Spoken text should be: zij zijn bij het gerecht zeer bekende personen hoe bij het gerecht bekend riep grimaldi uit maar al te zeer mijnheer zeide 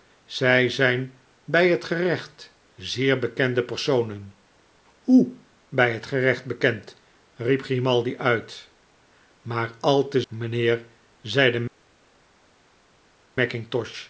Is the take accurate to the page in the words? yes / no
no